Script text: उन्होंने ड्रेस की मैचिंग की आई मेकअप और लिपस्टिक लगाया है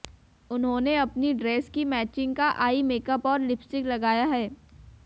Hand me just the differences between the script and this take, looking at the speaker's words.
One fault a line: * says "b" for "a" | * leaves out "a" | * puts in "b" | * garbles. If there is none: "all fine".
* puts in "अपनी"
* says "का" for "की"